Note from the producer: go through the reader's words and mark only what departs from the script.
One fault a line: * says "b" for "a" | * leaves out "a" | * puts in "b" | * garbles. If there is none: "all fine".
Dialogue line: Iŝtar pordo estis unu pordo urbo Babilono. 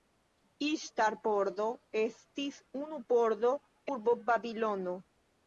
all fine